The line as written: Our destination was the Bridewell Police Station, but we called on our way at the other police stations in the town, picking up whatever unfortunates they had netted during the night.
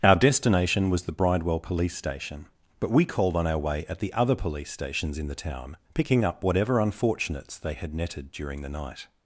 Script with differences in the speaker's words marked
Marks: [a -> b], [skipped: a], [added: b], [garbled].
Our destination was the Bridewell Police Station, but we called on our way at the other police stations in the town, picking up whatever unfortunates they had netted during the night.